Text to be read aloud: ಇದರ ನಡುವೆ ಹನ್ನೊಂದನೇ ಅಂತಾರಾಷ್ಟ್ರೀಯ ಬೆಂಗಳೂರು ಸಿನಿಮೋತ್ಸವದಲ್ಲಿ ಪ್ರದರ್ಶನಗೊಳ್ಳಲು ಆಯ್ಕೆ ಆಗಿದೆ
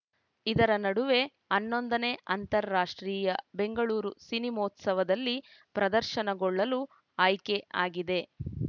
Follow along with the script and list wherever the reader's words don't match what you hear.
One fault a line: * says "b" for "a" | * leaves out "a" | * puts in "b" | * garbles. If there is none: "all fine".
all fine